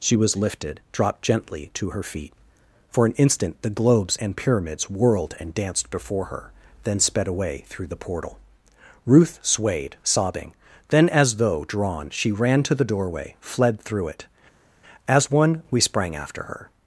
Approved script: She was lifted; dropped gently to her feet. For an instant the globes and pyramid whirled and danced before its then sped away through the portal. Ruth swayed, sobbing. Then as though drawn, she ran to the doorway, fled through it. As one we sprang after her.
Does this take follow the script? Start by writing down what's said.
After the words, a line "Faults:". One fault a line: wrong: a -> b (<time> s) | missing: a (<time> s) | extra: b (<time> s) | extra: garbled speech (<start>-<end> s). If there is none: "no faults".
She was lifted; dropped gently to her feet. For an instant the globes and pyramids whirled and danced before her then sped away through the portal. Ruth swayed, sobbing. Then as though drawn, she ran to the doorway, fled through it. As one we sprang after her.
Faults:
wrong: pyramid -> pyramids (4.4 s)
wrong: its -> her (6.3 s)